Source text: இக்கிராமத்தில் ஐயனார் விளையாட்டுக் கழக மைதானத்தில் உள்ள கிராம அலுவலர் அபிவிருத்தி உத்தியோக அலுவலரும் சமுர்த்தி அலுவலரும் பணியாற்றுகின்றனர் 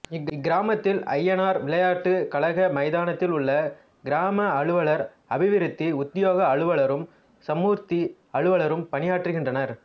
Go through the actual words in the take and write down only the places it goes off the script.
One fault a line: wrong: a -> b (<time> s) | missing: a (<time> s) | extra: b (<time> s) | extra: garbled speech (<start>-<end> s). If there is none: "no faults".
no faults